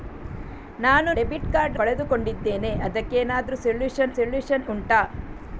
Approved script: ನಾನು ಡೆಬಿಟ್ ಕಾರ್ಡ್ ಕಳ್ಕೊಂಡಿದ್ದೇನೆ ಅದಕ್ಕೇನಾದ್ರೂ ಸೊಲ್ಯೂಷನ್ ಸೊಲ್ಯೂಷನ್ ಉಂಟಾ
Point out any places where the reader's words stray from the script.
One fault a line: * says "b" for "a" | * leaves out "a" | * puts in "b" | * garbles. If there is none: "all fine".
all fine